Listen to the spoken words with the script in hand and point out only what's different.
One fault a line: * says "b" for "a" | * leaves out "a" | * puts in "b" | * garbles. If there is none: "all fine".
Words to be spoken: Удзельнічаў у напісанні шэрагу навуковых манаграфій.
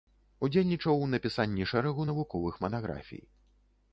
all fine